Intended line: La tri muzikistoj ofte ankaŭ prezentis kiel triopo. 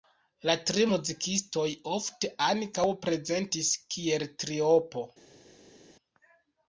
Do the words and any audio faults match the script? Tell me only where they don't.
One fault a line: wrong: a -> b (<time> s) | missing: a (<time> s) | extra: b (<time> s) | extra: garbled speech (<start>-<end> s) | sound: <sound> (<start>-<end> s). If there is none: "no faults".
no faults